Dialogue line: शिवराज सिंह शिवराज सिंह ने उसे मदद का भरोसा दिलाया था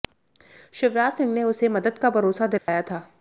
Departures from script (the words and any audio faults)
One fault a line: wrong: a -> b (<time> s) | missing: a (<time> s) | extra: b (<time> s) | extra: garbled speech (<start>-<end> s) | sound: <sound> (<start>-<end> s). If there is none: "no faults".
missing: शिवराज सिंह (1.3 s)
sound: dropout (2.6-2.7 s)